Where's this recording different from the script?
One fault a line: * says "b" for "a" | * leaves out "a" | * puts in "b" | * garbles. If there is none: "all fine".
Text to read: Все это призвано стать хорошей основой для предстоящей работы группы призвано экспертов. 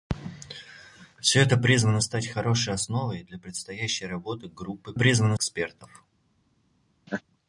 all fine